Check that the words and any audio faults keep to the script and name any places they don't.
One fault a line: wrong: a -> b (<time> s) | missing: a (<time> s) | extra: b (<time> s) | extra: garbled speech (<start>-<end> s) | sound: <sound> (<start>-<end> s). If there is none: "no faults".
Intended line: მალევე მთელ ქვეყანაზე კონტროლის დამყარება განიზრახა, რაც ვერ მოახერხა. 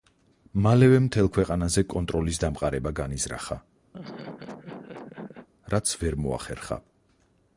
sound: laugh (3.9-5.5 s)